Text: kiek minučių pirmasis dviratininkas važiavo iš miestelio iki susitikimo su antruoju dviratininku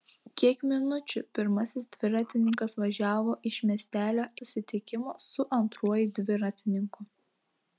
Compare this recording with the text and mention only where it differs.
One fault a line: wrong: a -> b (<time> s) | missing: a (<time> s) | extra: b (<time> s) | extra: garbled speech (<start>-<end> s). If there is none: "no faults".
missing: iki (4.2 s)